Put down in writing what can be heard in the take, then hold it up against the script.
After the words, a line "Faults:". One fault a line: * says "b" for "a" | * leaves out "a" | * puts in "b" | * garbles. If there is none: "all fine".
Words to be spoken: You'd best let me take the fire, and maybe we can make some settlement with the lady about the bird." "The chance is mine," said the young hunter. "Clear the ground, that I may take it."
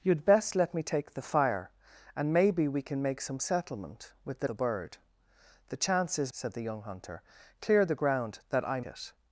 You'd best let me take the fire, and maybe we can make some settlement with the the bird." "The chance is," said the young hunter. "Clear the ground, that I it."
Faults:
* leaves out "lady about"
* leaves out "mine"
* leaves out "may take"